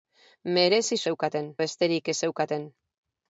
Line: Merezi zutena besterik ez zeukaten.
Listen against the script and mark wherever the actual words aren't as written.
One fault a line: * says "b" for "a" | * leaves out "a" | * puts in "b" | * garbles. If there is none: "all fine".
* says "zeukaten" for "zutena"